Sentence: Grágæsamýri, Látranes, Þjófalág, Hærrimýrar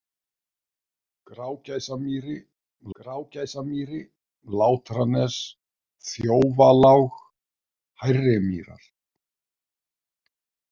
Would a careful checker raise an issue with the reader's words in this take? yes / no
yes